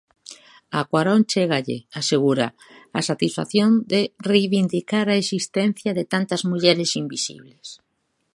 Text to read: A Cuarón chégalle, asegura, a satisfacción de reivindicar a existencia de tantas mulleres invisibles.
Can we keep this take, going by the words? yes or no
yes